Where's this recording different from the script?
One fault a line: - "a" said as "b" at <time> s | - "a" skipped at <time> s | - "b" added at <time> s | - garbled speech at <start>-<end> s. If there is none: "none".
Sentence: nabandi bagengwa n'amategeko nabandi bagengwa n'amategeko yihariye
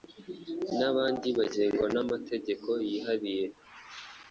- "nabandi bagengwa n'amategeko" skipped at 2.7 s